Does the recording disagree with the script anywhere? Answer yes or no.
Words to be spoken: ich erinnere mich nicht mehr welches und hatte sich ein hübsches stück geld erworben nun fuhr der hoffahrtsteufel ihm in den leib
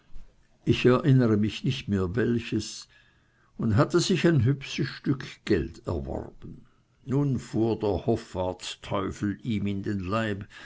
no